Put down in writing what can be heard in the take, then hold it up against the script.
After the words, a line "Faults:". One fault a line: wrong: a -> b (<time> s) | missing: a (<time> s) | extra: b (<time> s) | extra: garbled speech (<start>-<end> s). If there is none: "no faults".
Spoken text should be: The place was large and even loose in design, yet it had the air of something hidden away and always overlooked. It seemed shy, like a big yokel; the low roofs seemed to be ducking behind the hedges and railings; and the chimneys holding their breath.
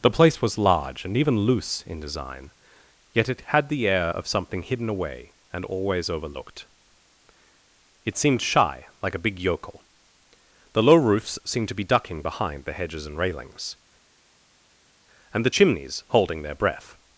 The place was large and even loose in design, yet it had the air of something hidden away and always overlooked. It seemed shy, like a big yokel; the low roofs seemed to be ducking behind the hedges and railings; and the chimneys holding their breath.
Faults:
no faults